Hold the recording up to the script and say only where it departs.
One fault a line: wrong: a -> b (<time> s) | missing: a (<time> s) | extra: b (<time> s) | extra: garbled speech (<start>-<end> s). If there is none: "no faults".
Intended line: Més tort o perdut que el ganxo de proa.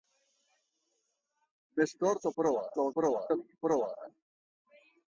wrong: perdut -> proa (2.4 s)
wrong: ganxo -> proa (3.0 s)